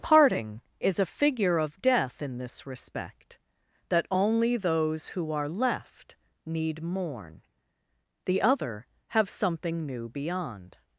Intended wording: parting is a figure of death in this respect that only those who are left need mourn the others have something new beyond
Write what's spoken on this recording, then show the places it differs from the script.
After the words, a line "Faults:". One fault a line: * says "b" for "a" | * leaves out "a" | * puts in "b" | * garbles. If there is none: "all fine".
parting is a figure of death in this respect that only those who are left need mourn the other have something new beyond
Faults:
* says "other" for "others"